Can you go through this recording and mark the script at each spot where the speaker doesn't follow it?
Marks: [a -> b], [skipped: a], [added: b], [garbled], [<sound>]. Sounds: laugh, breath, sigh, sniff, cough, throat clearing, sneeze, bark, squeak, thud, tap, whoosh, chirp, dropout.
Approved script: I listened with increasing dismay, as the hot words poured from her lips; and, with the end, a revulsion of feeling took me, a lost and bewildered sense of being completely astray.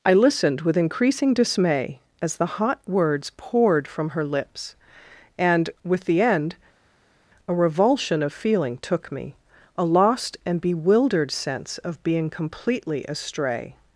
I listened with increasing dismay, as the hot words poured from her lips; and, with the end, a revulsion of feeling took me, a lost and bewildered sense of being completely astray.